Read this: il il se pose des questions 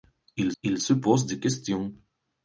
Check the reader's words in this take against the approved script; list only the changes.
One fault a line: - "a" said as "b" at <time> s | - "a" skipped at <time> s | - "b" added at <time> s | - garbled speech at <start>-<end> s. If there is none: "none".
none